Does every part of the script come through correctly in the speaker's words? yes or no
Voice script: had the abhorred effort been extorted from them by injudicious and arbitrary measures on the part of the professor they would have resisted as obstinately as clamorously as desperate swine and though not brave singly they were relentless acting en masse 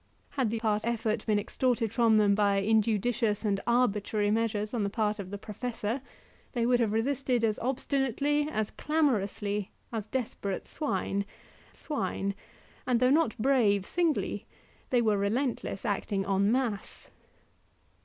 no